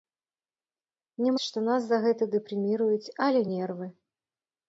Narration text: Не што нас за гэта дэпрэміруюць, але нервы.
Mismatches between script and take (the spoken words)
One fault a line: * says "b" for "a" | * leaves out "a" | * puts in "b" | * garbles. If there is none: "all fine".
all fine